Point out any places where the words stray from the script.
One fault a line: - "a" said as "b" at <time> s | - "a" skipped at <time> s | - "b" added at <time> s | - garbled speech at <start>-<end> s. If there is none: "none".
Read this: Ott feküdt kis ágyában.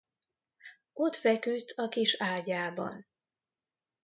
- "a" added at 1.7 s